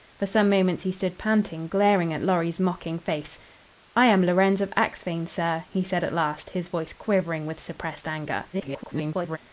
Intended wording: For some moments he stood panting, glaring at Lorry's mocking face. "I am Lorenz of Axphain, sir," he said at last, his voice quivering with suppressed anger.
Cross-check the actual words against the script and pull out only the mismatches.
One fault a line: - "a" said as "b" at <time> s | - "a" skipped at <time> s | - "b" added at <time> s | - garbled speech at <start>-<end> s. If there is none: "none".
- garbled speech at 8.5-9.4 s